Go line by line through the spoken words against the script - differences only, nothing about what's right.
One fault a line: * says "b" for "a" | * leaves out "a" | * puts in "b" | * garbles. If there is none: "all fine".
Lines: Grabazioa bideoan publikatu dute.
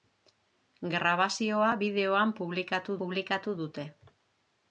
* puts in "publikatu"